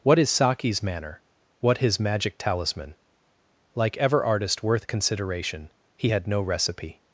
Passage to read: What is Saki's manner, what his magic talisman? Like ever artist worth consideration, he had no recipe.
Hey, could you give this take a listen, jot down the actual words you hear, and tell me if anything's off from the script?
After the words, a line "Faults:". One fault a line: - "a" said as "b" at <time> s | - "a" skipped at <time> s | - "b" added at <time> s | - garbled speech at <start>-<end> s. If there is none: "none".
What is Saki's manner, what his magic talisman? Like ever artist worth consideration, he had no recipe.
Faults:
none